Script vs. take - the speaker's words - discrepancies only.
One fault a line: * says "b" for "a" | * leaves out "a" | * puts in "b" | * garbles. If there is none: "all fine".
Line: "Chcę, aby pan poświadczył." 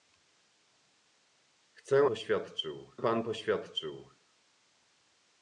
* says "poświadczył" for "aby"